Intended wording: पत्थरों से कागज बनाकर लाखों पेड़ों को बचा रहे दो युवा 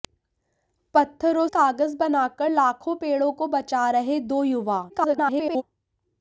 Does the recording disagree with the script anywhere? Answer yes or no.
yes